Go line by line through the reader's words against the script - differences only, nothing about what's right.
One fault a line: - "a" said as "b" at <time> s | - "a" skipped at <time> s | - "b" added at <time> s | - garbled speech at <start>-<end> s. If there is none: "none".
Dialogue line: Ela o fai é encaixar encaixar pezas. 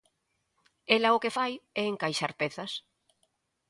- "que" added at 1.2 s
- "encaixar" skipped at 2.3 s